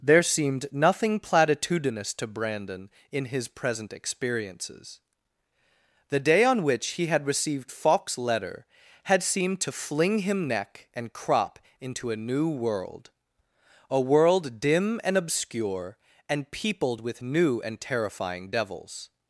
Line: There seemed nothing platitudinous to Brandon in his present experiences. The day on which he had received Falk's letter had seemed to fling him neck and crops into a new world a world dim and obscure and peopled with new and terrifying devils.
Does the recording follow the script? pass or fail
fail